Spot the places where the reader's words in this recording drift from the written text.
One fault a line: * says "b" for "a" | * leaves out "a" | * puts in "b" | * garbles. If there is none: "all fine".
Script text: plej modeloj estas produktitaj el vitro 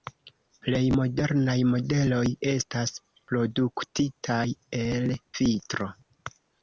* puts in "modernaj"